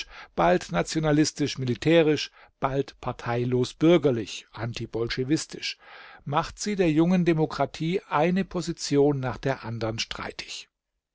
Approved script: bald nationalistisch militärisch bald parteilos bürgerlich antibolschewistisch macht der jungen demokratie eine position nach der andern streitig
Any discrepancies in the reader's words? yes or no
yes